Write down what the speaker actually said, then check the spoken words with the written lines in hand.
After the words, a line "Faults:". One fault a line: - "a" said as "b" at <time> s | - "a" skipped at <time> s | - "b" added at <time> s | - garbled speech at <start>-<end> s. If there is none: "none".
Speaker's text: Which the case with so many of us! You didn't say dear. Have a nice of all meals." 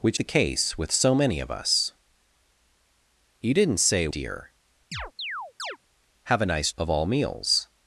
Which the case with so many of us! You didn't say dear. Have a nice of all meals."
Faults:
none